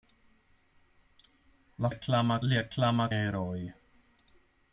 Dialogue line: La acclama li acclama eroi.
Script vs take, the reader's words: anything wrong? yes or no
no